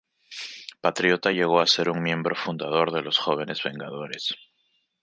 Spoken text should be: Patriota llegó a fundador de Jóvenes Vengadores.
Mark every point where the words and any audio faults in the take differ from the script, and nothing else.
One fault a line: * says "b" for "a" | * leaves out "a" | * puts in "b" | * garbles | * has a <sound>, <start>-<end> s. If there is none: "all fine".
* puts in "ser un miembro"
* puts in "los"